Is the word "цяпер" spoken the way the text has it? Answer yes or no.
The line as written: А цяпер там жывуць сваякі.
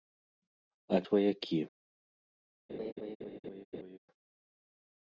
no